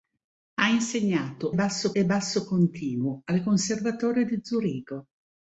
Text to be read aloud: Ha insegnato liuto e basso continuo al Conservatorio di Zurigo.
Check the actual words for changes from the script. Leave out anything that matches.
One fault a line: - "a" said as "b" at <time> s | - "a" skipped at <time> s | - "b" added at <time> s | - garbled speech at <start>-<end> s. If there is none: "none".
- "liuto" said as "basso" at 1.5 s